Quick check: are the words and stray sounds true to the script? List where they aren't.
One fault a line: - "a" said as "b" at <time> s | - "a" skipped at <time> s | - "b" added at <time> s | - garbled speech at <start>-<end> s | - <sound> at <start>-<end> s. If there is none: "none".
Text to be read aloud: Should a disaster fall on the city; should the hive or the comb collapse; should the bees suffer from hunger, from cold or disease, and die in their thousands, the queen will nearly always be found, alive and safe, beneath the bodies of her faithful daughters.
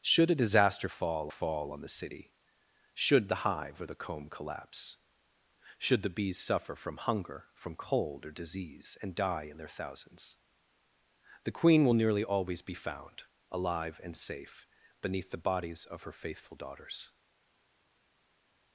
- "fall" added at 1.3 s